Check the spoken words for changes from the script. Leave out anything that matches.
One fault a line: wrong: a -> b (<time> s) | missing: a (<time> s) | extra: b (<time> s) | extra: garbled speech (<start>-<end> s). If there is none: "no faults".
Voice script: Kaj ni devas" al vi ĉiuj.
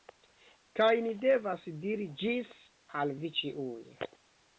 extra: diri Ĝis (1.8 s)